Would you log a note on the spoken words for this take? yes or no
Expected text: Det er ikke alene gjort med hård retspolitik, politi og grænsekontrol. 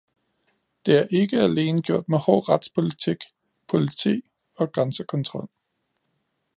no